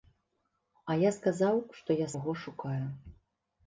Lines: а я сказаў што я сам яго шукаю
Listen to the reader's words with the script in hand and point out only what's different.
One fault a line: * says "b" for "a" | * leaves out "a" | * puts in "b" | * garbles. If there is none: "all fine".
* leaves out "сам"